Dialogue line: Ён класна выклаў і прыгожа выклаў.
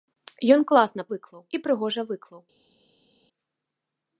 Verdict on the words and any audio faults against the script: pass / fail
pass